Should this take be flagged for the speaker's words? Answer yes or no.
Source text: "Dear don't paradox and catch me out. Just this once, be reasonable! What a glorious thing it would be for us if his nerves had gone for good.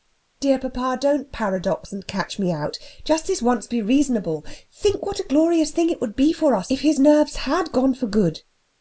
yes